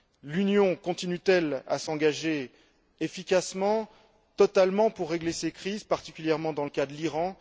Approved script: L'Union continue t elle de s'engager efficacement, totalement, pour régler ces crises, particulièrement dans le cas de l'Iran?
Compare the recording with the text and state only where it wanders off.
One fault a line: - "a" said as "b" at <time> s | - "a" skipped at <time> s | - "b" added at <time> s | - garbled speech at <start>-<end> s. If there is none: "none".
- "de" said as "à" at 1.7 s